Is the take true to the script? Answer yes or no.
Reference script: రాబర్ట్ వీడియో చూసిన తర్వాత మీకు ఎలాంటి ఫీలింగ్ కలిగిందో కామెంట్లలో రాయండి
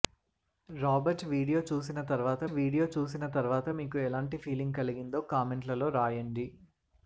no